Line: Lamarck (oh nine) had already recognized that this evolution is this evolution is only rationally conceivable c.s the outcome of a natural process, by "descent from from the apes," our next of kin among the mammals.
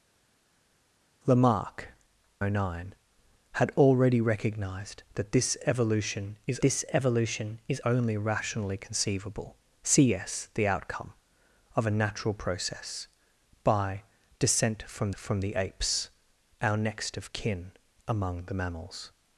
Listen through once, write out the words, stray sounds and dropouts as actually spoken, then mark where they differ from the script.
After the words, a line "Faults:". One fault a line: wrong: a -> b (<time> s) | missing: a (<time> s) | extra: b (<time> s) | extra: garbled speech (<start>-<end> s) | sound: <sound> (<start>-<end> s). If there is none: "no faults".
Lamarck (oh nine) had already recognized that this evolution is this evolution is only rationally conceivable c.s the outcome of a natural process, by "descent from from the apes," our next of kin among the mammals.
Faults:
no faults